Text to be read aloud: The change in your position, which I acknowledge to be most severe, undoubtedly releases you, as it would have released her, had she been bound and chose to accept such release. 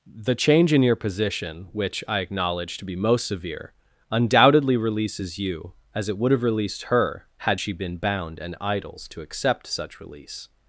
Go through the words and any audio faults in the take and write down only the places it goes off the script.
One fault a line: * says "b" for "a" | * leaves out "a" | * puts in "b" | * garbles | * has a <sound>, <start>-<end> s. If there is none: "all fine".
* says "idols" for "chose"